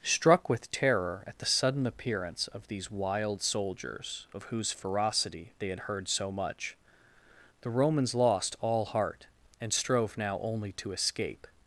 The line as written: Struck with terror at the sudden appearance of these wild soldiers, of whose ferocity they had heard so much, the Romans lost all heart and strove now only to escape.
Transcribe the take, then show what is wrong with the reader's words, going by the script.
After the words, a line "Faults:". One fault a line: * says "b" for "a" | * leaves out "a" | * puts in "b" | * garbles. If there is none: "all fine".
Struck with terror at the sudden appearance of these wild soldiers, of whose ferocity they had heard so much, the Romans lost all heart and strove now only to escape.
Faults:
all fine